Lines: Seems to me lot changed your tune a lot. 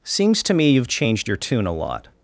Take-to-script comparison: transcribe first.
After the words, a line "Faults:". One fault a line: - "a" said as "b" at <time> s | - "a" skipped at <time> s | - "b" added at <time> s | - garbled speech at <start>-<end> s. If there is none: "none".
Seems to me you've changed your tune a lot.
Faults:
- "lot" said as "you've" at 0.7 s